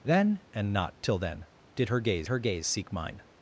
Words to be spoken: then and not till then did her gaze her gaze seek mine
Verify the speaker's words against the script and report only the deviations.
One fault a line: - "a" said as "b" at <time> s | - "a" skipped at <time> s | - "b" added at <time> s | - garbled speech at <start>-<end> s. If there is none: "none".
none